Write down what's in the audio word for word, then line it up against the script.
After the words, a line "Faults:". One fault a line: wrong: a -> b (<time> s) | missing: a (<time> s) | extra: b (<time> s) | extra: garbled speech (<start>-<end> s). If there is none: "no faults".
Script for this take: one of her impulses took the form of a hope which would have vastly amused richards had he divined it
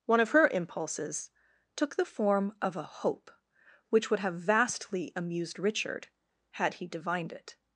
one of her impulses took the form of a hope which would have vastly amused richard had he divined it
Faults:
wrong: richards -> richard (5.6 s)